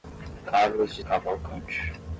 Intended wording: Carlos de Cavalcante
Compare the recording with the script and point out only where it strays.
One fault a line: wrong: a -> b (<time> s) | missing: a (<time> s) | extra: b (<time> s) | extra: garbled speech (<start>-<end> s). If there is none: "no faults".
no faults